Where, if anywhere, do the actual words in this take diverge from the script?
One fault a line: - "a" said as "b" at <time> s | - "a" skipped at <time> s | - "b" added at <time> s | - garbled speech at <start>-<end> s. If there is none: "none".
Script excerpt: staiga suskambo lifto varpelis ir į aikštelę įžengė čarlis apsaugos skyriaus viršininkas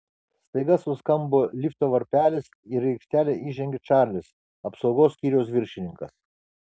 none